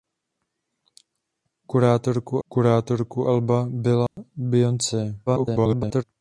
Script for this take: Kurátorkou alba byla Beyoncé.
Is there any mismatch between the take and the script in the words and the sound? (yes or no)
yes